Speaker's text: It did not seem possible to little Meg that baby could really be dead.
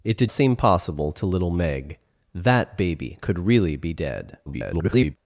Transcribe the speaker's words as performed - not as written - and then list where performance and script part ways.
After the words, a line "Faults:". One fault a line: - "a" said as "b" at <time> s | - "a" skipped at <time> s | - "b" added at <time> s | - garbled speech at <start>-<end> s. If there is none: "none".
It did seem possible to little Meg that baby could really be dead. [garbled]
Faults:
- "not" skipped at 0.3 s
- garbled speech at 4.5-5.2 s